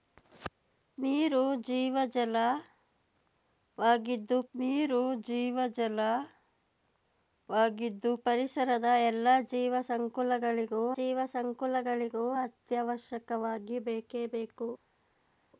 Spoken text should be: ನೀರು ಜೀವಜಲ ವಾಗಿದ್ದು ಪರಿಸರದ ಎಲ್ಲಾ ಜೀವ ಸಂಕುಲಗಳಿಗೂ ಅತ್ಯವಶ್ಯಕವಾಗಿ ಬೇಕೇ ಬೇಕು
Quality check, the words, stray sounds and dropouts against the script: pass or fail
fail